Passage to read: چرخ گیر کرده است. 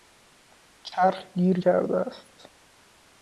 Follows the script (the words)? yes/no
yes